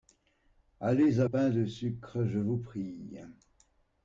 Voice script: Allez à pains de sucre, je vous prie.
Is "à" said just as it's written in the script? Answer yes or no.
yes